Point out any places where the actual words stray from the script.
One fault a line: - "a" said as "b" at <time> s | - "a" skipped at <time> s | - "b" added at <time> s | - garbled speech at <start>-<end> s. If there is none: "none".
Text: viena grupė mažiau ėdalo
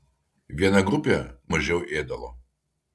none